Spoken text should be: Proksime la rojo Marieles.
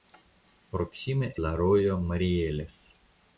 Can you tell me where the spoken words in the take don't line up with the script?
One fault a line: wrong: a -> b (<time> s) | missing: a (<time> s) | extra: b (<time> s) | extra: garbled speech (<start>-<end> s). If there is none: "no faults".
no faults